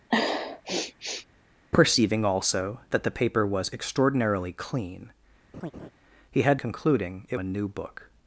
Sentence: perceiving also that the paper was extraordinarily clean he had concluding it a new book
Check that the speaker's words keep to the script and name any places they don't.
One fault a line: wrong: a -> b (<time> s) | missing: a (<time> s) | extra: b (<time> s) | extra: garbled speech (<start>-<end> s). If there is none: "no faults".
no faults